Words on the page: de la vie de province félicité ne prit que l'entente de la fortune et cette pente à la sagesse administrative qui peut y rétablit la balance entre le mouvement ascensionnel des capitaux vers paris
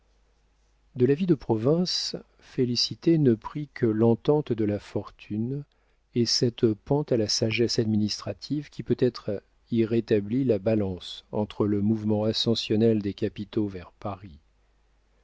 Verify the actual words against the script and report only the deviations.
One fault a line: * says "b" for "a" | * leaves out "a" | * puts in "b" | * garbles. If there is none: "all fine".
* puts in "être"